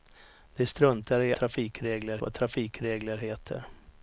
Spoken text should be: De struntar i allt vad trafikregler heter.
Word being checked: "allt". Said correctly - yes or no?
no